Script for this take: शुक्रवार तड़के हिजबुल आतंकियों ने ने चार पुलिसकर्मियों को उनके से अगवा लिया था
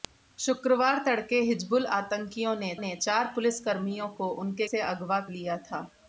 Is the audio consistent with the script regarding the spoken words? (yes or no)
yes